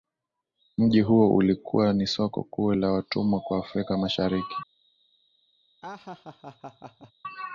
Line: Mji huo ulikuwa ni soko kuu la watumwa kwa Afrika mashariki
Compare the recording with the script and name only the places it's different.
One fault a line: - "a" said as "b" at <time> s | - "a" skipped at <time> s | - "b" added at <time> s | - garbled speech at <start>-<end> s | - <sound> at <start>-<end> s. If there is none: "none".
- laugh at 5.8-7.1 s